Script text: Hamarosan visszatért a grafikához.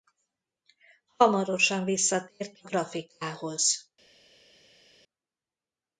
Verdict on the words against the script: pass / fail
pass